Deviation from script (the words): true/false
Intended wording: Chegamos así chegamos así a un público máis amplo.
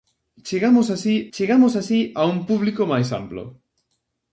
false